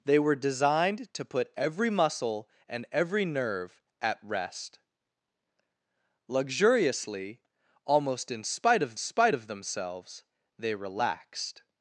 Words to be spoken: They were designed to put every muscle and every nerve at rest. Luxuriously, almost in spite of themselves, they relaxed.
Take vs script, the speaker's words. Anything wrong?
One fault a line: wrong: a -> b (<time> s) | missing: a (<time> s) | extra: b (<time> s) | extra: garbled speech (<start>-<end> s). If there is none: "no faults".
extra: spite of (9.0 s)